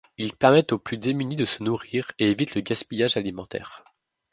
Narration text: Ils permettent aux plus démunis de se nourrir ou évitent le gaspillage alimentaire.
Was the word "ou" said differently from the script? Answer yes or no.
yes